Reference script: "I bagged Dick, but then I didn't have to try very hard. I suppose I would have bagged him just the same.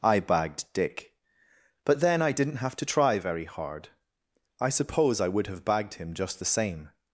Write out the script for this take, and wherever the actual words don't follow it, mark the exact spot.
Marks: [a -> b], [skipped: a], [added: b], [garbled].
"I bagged Dick, but then I didn't have to try very hard. I suppose I would have bagged him just the same.